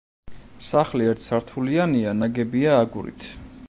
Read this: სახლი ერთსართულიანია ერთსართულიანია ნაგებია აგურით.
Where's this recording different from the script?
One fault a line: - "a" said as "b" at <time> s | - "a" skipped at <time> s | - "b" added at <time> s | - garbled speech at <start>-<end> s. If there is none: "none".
- "ერთსართულიანია" skipped at 2.2 s